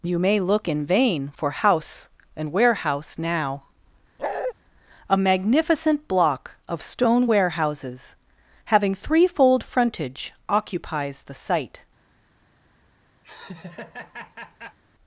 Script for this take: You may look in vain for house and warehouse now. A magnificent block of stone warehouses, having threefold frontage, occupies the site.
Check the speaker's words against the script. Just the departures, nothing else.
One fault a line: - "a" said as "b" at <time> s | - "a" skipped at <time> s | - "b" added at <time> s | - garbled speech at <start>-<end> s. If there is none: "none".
none